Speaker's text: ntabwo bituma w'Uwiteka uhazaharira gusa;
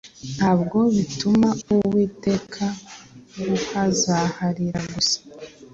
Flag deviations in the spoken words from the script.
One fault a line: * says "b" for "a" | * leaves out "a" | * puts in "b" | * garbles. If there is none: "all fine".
all fine